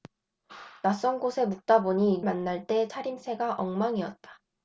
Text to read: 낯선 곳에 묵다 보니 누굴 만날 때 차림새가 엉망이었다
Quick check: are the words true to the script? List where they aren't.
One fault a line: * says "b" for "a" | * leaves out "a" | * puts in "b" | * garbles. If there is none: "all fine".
* leaves out "누굴"